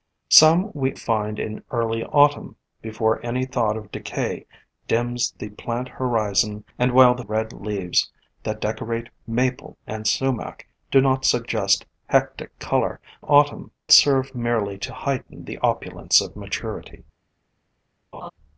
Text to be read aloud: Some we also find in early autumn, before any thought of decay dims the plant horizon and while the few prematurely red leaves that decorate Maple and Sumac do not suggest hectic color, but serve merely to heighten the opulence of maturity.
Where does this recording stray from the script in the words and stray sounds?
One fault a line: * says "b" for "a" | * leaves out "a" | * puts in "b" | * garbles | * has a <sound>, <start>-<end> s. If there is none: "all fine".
* leaves out "also"
* leaves out "few prematurely"
* says "autumn" for "but"
* has a laugh, 18.1-18.3 s